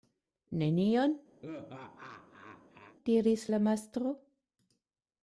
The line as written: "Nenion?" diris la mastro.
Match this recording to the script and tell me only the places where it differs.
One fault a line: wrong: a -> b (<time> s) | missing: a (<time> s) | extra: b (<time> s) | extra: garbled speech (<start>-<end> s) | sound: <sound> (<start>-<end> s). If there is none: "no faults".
sound: laugh (1.4-3.0 s)